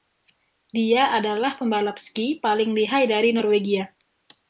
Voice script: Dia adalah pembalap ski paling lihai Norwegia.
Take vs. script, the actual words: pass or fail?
fail